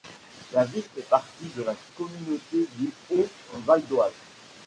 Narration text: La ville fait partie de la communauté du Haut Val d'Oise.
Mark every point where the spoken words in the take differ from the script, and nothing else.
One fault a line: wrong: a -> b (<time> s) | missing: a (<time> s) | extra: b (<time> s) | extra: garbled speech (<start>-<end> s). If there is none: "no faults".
no faults